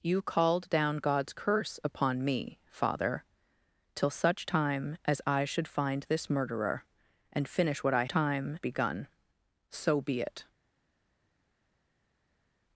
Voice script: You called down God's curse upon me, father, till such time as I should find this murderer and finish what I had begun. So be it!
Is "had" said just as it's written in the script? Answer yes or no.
no